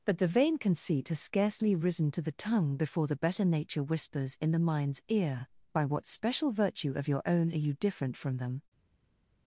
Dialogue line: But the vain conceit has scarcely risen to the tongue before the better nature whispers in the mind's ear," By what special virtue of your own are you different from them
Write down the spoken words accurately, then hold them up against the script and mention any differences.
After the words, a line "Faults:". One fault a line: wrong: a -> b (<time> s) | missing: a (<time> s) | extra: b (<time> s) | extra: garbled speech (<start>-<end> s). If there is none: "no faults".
But the vain conceit has scarcely risen to the tongue before the better nature whispers in the mind's ear," By what special virtue of your own are you different from them
Faults:
no faults